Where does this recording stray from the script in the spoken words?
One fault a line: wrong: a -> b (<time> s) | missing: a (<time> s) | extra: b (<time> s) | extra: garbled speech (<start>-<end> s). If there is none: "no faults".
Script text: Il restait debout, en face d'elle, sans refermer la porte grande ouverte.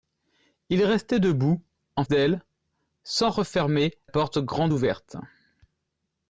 missing: face (2.0 s)
missing: la (3.9 s)